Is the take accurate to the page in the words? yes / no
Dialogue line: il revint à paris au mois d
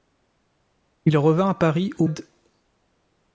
no